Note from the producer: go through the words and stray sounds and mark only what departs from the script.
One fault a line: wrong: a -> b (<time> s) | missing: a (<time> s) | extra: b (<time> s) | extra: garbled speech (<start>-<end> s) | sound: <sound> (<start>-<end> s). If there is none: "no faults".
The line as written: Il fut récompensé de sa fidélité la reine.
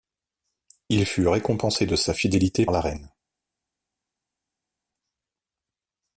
no faults